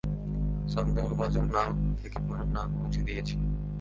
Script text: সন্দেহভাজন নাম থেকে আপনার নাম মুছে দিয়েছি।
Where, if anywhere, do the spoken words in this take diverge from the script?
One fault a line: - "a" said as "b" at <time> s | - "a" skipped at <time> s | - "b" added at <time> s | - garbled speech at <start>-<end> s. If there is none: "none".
none